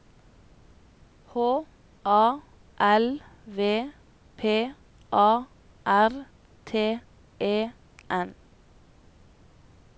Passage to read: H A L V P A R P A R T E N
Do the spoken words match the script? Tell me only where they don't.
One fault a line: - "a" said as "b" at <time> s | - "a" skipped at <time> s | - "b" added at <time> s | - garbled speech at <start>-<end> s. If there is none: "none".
- "P A R" skipped at 6.3 s